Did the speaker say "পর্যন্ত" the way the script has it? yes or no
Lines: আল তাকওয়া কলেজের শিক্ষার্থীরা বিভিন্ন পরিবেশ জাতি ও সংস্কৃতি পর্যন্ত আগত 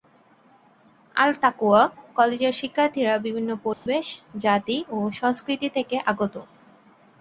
no